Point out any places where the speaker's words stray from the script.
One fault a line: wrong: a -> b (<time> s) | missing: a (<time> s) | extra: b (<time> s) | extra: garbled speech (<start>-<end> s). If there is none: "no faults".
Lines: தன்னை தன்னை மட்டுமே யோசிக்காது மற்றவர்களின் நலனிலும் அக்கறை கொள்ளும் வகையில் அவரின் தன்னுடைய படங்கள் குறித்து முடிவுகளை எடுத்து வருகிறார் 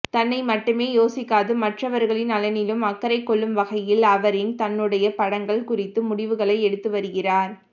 missing: தன்னை (0.4 s)